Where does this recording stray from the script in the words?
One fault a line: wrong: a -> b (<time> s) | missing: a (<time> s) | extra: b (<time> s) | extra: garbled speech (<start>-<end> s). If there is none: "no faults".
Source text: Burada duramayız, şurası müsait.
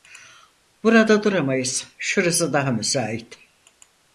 extra: daha (2.5 s)